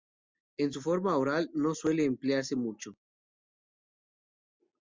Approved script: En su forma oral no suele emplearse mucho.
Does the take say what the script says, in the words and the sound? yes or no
yes